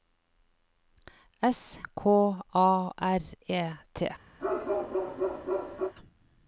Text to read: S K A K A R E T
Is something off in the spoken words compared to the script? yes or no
yes